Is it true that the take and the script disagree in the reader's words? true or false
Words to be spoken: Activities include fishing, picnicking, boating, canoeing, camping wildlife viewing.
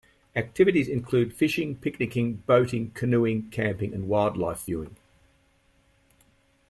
true